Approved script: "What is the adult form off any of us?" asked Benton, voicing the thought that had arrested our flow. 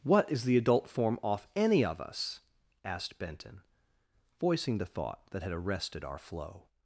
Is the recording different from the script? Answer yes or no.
no